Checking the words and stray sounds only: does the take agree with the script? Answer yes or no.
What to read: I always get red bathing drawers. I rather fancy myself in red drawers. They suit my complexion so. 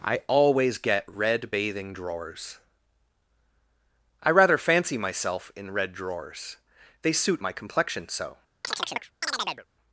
no